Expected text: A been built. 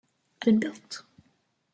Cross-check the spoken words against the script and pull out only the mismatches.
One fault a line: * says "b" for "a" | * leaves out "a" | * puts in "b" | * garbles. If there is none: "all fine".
all fine